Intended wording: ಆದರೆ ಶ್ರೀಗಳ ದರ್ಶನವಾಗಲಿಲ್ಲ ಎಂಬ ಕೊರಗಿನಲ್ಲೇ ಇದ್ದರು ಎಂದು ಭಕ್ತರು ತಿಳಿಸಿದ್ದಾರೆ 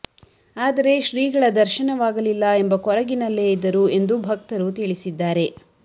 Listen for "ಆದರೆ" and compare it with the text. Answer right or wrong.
right